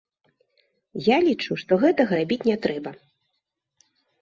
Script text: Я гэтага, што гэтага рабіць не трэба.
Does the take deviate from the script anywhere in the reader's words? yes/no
yes